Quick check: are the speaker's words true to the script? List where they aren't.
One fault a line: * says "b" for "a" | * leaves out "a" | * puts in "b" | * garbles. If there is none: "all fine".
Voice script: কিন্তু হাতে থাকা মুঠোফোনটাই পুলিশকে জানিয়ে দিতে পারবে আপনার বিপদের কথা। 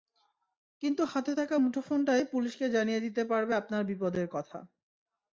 all fine